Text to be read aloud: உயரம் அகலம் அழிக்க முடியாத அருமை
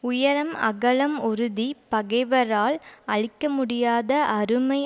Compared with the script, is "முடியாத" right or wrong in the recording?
right